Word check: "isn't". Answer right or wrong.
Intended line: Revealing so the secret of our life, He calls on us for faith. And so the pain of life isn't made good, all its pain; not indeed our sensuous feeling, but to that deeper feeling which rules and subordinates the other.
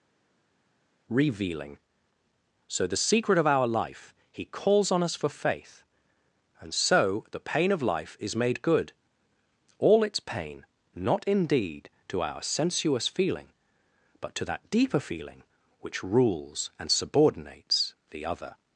wrong